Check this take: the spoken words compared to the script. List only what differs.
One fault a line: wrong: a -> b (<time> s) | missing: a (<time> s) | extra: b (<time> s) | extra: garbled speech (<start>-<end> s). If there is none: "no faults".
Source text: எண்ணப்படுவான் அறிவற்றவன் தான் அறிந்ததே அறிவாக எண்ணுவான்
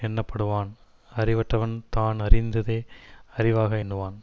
no faults